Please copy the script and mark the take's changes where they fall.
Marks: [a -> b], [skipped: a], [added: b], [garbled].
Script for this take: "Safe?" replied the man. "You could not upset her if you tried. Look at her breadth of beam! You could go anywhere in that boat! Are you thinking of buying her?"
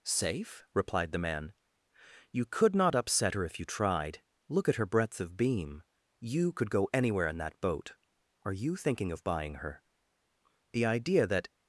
"Safe?" replied the man. "You could not upset her if you tried. Look at her breadth of beam! You could go anywhere in that boat! Are you thinking of buying her?" [added: The idea that]